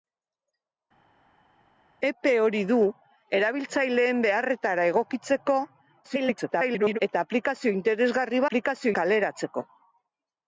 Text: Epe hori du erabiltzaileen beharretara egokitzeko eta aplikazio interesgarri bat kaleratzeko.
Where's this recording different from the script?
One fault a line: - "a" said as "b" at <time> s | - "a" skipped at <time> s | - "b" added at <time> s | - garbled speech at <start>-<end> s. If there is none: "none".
- garbled speech at 6.0-7.0 s
- "bat" said as "aplikazio" at 8.5 s